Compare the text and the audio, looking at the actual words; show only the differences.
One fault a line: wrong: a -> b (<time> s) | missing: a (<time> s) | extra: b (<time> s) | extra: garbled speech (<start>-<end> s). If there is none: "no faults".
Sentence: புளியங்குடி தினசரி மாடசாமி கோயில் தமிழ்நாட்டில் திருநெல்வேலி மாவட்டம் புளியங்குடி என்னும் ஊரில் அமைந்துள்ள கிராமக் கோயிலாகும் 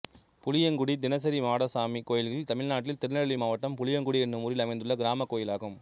no faults